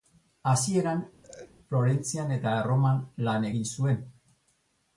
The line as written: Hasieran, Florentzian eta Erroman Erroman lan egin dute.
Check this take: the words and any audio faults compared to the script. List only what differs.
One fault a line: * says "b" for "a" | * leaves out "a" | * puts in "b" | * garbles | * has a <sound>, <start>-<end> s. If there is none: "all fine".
* has a laugh, 1.2-1.5 s
* leaves out "Erroman"
* says "zuen" for "dute"